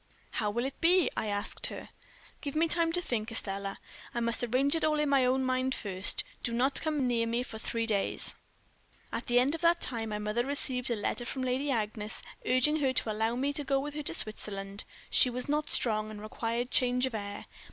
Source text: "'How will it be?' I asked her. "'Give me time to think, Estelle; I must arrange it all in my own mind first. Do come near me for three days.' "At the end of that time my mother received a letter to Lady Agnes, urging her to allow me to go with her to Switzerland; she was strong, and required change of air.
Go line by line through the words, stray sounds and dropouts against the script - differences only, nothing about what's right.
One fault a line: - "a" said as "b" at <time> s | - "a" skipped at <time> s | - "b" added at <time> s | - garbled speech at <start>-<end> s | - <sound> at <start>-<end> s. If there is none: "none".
- "not" added at 6.5 s
- "to" said as "from" at 11.2 s
- "not" added at 15.5 s